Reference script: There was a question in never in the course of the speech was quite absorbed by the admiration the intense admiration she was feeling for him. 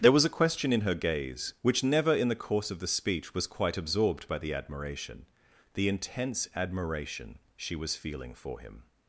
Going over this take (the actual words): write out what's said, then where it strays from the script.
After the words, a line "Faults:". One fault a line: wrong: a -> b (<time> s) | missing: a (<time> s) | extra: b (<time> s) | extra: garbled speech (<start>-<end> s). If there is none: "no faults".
There was a question in her gaze, which never in the course of the speech was quite absorbed by the admiration the intense admiration she was feeling for him.
Faults:
extra: her gaze which (0.8 s)